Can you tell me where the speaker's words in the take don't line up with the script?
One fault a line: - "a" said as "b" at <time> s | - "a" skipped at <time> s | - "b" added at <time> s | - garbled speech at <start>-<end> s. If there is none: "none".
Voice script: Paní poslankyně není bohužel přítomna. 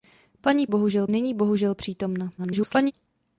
- "poslankyně" said as "bohužel" at 0.7 s
- garbled speech at 2.4-2.9 s